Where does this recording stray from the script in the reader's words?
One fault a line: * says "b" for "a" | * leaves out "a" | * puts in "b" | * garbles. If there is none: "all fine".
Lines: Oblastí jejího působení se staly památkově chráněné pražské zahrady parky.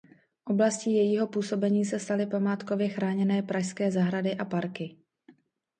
* puts in "a"